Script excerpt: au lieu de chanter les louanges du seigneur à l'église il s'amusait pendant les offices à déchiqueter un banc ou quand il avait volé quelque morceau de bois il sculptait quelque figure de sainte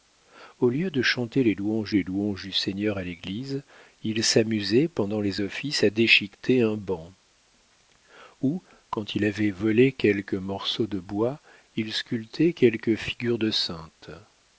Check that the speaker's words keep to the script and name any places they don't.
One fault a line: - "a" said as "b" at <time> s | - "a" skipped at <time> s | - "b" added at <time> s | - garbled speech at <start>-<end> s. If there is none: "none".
- "les louanges" added at 1.9 s